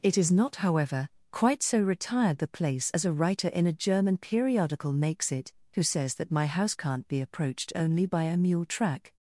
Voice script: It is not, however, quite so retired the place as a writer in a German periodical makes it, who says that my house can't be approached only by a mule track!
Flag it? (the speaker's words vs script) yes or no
no